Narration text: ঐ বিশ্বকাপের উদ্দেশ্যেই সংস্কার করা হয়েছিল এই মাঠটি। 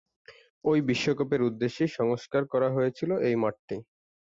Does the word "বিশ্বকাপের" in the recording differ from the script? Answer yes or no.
no